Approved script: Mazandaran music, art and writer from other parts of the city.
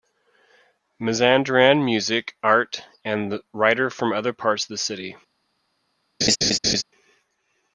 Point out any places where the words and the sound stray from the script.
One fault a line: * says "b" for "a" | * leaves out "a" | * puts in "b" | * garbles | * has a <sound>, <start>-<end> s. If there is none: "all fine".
* has a laugh, 6.2-6.8 s